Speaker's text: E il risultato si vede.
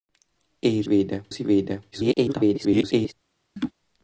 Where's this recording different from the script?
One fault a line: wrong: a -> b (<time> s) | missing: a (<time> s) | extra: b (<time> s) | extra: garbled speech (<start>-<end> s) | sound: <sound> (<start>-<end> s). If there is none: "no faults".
wrong: risultato -> vede (0.9 s)
extra: garbled speech (1.9-3.1 s)
sound: laugh (3.6-3.7 s)